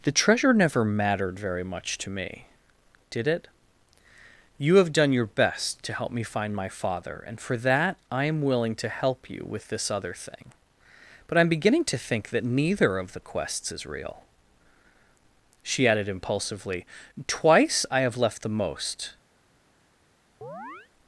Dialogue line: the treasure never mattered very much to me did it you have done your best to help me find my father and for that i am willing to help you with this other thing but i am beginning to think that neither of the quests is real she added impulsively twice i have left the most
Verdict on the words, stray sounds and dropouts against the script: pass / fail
fail